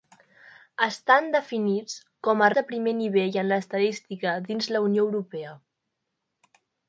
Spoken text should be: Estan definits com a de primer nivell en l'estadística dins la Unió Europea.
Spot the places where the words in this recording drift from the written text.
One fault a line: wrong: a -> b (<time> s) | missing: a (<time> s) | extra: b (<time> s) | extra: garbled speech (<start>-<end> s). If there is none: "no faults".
no faults